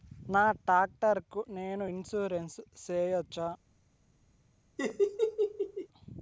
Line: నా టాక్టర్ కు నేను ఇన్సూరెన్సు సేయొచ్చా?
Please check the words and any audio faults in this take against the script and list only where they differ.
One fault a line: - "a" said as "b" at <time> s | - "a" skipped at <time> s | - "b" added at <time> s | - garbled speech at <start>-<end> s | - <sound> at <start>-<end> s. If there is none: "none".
- laugh at 4.8-5.9 s